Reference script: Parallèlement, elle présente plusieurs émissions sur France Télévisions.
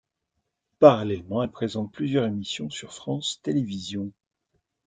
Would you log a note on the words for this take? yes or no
no